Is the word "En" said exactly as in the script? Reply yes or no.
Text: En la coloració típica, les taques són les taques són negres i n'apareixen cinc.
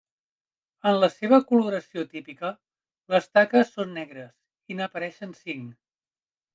yes